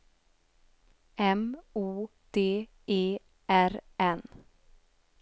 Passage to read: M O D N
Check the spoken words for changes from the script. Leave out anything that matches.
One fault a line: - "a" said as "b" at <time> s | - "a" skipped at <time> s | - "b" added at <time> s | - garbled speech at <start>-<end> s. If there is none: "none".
- "E R" added at 2.9 s